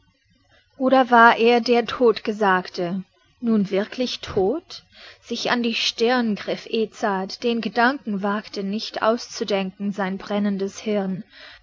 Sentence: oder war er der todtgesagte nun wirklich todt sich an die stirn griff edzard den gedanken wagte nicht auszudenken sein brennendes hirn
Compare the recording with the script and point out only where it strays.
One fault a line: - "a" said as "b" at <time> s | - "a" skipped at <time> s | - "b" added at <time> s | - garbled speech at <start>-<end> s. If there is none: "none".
none